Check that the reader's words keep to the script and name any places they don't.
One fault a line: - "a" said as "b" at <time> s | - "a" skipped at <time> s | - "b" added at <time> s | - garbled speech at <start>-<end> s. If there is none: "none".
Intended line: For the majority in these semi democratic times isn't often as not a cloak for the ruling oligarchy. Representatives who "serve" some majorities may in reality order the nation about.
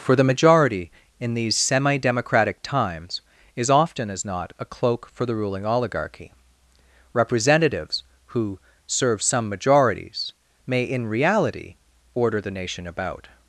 - "isn't" said as "is" at 3.5 s